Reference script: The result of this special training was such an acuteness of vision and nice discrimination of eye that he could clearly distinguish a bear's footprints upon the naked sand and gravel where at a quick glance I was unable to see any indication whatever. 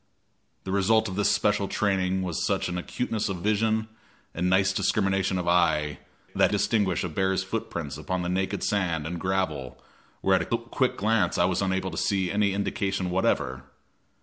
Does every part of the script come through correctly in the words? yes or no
no